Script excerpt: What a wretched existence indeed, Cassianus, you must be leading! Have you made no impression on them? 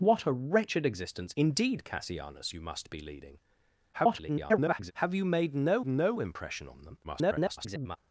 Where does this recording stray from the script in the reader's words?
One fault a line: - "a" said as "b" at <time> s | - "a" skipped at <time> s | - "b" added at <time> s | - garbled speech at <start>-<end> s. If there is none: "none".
- garbled speech at 3.9-4.9 s
- "no" added at 5.9 s
- garbled speech at 7.0-8.0 s